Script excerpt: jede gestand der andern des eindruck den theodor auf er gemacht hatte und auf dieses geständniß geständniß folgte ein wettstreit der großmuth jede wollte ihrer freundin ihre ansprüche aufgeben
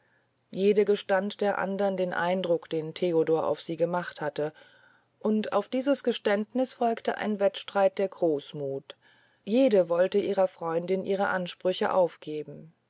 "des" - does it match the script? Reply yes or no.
no